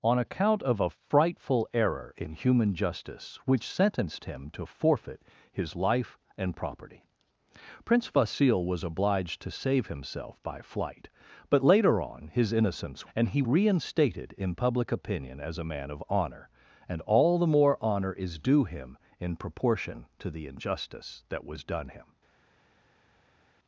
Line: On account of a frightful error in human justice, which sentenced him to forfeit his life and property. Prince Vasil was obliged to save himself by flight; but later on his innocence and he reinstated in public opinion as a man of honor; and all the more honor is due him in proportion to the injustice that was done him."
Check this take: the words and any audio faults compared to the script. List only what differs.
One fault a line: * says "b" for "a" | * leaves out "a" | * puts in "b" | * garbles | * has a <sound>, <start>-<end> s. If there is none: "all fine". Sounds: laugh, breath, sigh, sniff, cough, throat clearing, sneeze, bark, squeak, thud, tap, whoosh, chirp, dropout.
all fine